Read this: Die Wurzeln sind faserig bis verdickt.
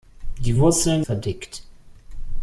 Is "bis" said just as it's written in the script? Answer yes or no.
no